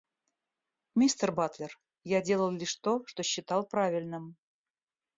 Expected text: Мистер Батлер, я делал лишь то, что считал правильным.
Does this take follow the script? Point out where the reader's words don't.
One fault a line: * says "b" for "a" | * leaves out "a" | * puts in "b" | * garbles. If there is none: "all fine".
all fine